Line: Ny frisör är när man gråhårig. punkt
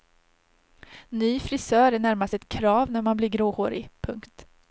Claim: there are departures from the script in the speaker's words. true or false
true